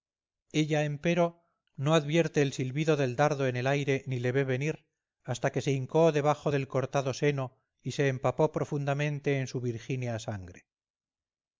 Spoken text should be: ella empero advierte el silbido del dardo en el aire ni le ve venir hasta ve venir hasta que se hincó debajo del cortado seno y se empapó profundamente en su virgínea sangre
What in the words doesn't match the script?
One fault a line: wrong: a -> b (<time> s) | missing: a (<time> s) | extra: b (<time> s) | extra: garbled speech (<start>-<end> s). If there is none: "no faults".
extra: no (1.8 s)
missing: ve venir hasta (5.5 s)